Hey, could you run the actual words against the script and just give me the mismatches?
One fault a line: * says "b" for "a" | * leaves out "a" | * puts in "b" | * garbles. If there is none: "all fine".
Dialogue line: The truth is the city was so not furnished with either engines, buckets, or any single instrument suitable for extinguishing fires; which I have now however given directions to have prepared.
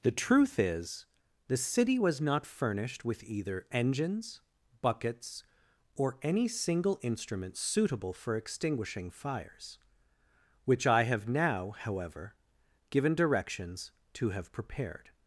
* leaves out "so"